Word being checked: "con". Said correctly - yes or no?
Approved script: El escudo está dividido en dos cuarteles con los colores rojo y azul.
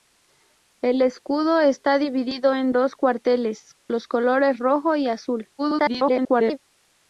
no